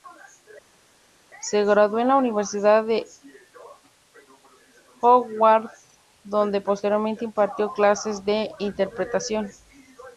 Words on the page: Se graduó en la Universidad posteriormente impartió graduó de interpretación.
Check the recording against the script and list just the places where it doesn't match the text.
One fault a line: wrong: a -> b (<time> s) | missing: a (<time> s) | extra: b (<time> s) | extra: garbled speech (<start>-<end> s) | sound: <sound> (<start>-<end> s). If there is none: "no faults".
extra: de Howard donde (2.8 s)
wrong: graduó -> clases (7.7 s)